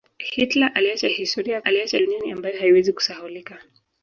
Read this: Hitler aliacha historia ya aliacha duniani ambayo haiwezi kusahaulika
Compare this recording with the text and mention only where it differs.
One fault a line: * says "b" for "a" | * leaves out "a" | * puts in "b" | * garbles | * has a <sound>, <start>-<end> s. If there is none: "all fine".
all fine